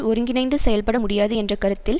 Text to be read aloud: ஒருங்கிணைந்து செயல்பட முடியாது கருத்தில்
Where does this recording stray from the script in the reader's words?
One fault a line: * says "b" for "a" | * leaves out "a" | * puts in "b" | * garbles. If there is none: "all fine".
* puts in "என்ற"